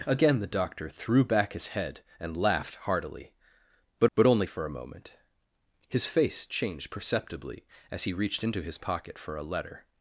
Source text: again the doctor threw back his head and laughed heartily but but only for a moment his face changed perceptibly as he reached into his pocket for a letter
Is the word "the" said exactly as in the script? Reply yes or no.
yes